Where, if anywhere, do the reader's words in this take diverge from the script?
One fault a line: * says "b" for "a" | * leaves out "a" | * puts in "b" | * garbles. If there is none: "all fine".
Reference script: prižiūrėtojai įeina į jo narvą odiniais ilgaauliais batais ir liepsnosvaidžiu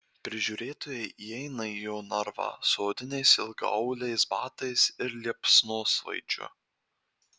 * puts in "su"